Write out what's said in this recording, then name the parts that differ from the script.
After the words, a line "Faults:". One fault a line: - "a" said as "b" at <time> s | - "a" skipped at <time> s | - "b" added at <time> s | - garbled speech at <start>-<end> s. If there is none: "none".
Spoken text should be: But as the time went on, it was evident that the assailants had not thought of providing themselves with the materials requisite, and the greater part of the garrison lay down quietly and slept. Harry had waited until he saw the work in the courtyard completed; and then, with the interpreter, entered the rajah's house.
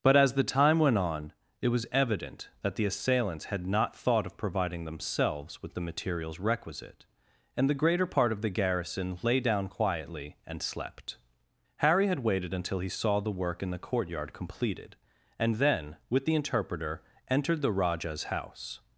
But as the time went on, it was evident that the assailants had not thought of providing themselves with the materials requisite, and the greater part of the garrison lay down quietly and slept. Harry had waited until he saw the work in the courtyard completed; and then, with the interpreter, entered the rajah's house.
Faults:
none